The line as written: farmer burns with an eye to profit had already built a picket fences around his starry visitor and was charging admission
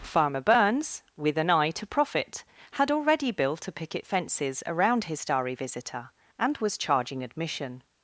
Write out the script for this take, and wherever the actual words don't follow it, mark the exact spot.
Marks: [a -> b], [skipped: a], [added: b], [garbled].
farmer burns with an eye to profit had already built a picket fences around his starry visitor and was charging admission